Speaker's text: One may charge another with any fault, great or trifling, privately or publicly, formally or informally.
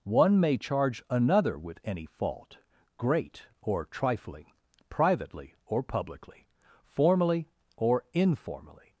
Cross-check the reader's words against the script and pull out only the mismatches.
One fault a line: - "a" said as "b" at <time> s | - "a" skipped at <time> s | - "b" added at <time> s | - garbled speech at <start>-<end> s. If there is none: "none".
none